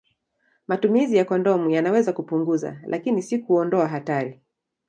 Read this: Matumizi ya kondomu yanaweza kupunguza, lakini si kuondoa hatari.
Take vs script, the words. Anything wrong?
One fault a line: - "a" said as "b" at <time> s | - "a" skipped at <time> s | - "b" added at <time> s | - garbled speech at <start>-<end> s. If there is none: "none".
none